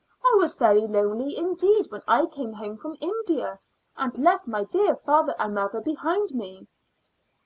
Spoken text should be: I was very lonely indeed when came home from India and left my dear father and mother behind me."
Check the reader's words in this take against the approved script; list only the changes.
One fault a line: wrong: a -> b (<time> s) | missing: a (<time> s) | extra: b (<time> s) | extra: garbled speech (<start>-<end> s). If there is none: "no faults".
extra: I (2.1 s)